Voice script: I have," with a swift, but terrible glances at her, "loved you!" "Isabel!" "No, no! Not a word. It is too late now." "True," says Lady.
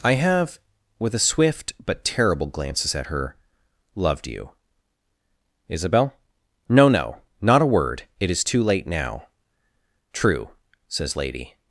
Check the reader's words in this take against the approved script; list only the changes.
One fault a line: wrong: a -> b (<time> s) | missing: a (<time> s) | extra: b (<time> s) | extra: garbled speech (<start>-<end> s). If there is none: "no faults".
no faults